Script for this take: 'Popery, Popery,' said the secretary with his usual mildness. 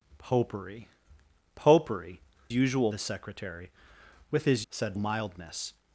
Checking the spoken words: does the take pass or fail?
fail